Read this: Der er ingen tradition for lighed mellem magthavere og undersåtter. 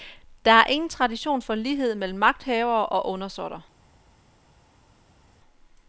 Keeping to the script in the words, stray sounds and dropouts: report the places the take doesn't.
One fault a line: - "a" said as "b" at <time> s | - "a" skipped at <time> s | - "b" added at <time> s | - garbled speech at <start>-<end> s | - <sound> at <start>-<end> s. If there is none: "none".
none